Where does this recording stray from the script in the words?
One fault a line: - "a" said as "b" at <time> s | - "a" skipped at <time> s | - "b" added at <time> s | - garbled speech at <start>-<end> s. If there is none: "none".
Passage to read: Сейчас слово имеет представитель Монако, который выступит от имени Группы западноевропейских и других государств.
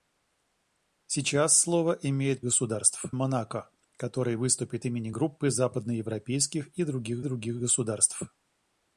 - "представитель" said as "государств" at 2.4 s
- "от" skipped at 4.9 s
- "других" added at 7.2 s